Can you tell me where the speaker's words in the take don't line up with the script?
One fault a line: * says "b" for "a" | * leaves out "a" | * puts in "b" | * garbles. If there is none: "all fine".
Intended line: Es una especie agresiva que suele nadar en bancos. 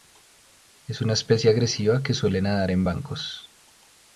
all fine